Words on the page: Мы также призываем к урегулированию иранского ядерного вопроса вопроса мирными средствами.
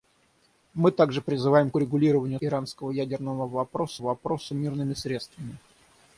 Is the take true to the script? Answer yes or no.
yes